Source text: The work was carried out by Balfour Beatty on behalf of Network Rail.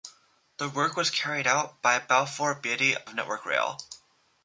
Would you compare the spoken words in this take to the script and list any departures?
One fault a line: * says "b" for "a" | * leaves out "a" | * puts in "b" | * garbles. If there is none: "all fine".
* leaves out "on behalf"